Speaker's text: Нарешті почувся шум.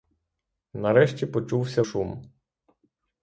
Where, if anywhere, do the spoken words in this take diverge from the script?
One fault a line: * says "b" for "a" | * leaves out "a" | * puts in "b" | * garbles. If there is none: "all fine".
all fine